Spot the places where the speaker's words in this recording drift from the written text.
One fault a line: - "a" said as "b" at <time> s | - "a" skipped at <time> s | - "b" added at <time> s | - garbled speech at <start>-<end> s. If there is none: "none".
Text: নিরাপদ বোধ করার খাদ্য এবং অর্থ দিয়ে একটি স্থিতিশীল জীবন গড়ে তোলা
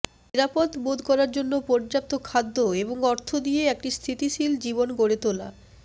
- "জন্য পর্যাপ্ত" added at 1.3 s